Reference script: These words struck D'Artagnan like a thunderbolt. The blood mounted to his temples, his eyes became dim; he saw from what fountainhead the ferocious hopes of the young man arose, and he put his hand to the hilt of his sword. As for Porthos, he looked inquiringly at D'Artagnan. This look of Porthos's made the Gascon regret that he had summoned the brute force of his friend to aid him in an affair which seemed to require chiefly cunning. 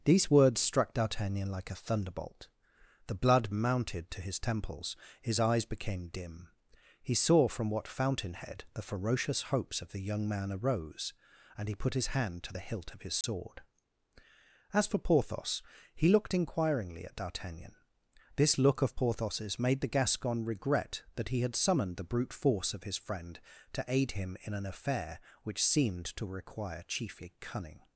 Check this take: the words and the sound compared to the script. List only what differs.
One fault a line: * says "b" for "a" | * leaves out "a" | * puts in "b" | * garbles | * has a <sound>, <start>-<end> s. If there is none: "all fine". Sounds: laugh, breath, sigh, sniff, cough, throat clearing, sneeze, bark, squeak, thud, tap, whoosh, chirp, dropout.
* has a dropout, 13.2-13.2 s